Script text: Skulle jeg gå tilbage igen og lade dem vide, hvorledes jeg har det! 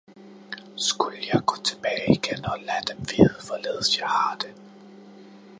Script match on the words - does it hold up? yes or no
yes